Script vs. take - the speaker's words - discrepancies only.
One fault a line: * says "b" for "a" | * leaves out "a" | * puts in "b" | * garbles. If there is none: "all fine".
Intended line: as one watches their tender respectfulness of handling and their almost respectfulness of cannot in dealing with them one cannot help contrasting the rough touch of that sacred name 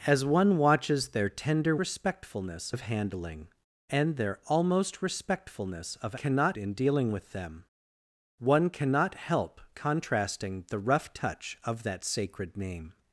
all fine